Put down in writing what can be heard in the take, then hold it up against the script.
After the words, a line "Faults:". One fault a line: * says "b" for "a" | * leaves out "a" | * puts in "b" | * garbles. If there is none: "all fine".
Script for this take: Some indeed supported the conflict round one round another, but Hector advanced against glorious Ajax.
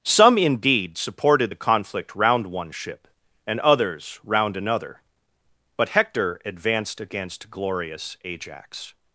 Some indeed supported the conflict round one ship, and others round another, but Hector advanced against glorious Ajax.
Faults:
* puts in "ship and others"